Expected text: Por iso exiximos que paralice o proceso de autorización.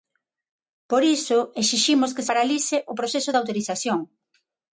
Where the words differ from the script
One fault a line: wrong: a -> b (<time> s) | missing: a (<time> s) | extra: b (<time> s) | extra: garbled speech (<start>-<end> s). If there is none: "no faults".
no faults